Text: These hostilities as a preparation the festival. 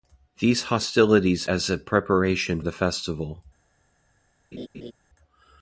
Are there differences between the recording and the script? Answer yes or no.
no